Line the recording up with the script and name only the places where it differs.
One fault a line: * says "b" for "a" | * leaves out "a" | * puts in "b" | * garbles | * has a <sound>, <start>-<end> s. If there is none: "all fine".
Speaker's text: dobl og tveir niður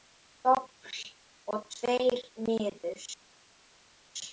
all fine